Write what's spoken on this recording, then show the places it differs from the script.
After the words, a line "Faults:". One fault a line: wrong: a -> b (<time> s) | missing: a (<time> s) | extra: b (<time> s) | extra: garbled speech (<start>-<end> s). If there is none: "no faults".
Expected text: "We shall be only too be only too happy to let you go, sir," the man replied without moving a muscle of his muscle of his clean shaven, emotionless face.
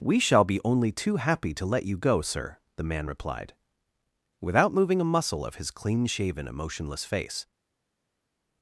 "We shall be only too happy to let you go, sir," the man replied without moving a muscle of his clean shaven, emotionless face.
Faults:
missing: be only too (1.2 s)
missing: muscle of his (5.7 s)